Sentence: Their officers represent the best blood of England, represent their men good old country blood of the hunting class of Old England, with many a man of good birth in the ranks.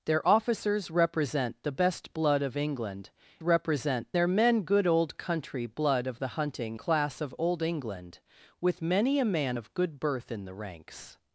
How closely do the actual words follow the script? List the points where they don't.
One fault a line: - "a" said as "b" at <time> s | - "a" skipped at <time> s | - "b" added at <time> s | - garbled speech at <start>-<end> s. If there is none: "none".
none